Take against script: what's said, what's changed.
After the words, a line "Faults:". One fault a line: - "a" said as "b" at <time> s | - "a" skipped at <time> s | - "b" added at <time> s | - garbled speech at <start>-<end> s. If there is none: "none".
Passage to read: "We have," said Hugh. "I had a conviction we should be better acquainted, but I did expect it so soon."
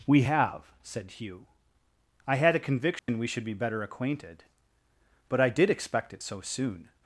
"We have," said Hugh. "I had a conviction we should be better acquainted, but I did expect it so soon."
Faults:
none